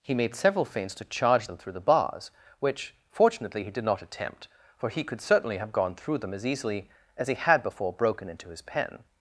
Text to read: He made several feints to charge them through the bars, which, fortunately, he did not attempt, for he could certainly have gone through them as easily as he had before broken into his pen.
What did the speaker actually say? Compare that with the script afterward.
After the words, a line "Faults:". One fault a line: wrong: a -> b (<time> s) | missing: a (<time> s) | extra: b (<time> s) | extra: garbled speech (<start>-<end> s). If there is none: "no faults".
He made several feints to charge them through the bars, which, fortunately, he did not attempt, for he could certainly have gone through them as easily as he had before broken into his pen.
Faults:
no faults